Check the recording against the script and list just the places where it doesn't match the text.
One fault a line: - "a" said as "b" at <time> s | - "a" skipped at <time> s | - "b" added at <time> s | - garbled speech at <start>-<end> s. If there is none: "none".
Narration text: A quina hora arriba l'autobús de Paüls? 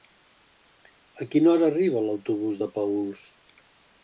none